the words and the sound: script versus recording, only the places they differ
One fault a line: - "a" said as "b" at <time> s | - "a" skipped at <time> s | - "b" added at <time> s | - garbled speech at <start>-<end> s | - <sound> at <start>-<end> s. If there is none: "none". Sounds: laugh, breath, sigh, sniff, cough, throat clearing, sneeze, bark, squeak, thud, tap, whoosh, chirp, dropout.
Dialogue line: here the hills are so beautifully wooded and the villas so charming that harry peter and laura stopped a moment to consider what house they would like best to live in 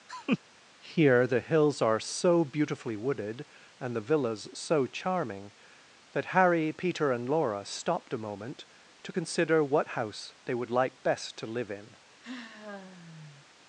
- laugh at 0.1-0.4 s
- sigh at 12.2-13.5 s